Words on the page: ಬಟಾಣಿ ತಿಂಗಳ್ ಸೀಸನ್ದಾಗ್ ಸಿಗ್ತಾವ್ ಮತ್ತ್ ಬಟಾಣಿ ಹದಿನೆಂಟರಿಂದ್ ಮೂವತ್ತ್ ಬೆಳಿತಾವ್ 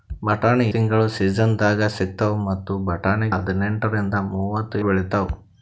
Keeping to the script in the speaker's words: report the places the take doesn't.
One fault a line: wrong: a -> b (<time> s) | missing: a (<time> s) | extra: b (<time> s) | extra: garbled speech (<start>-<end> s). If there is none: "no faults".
no faults